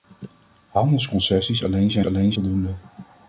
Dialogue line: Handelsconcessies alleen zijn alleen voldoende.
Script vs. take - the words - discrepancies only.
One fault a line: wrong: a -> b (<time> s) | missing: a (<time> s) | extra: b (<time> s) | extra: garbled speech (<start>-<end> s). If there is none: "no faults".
no faults